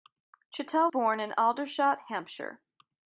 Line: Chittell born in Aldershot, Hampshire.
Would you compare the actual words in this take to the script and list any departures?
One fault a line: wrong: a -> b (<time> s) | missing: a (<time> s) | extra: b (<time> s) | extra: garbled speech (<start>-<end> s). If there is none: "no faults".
no faults